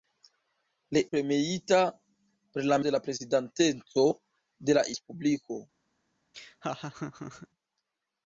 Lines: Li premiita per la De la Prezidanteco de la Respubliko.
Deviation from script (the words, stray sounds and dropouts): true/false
true